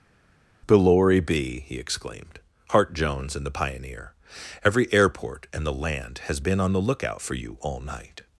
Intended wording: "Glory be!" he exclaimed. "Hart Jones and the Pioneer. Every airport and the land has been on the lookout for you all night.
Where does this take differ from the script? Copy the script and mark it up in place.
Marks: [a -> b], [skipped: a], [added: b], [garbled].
"Glory be!" he exclaimed. "Hart Jones and the Pioneer. Every airport and the land has been on the lookout for you all night.